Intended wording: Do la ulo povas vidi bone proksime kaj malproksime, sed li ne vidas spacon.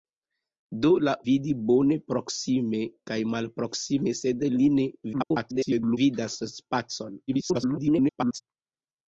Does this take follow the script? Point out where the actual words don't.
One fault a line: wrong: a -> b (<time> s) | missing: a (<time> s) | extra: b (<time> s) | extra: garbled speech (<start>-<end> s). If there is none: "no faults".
missing: ulo povas (1.1 s)
extra: garbled speech (5.1-6.0 s)
extra: garbled speech (7.3-8.4 s)